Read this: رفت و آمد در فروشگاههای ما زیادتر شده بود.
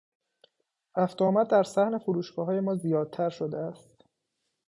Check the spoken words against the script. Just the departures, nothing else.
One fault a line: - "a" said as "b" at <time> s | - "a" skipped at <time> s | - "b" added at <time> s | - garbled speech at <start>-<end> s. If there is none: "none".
- "صحن" added at 1.6 s
- "بود" said as "است" at 3.6 s